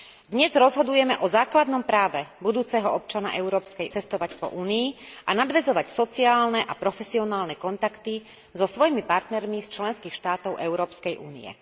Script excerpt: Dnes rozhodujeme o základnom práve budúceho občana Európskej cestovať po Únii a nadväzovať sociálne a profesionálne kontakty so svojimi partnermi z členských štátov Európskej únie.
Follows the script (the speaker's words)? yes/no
yes